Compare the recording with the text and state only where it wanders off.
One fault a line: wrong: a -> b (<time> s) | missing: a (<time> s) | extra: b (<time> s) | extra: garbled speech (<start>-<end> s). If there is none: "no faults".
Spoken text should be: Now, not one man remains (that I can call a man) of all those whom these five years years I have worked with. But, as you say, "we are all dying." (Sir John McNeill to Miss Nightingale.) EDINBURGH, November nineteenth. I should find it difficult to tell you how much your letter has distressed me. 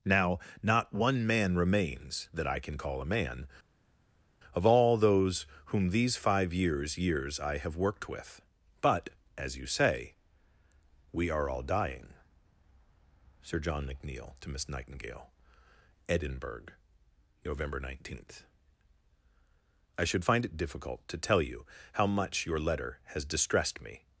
no faults